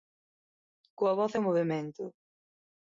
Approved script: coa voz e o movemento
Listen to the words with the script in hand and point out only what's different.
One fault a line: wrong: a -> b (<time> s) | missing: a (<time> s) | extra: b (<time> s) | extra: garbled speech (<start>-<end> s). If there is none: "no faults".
no faults